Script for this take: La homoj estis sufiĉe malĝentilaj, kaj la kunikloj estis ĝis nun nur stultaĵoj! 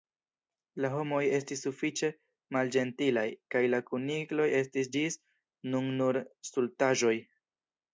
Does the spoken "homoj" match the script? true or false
true